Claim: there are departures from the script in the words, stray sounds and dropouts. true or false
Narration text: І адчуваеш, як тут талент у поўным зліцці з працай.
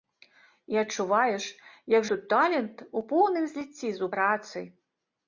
false